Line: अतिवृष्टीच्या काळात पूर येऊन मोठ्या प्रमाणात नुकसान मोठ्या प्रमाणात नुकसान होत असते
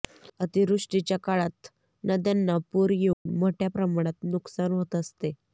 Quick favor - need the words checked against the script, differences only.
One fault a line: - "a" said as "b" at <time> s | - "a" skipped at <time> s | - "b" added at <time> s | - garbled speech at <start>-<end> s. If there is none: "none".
- "नद्यांना" added at 2.0 s
- "मोठ्या प्रमाणात नुकसान" skipped at 4.7 s